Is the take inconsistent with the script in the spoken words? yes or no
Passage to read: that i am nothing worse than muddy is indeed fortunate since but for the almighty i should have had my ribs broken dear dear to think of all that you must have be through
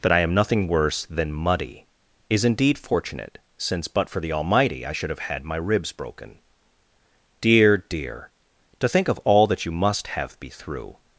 no